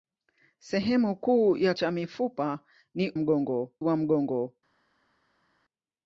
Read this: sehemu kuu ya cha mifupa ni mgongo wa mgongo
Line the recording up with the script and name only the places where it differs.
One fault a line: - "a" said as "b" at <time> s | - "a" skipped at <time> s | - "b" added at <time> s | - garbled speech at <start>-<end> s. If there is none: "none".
none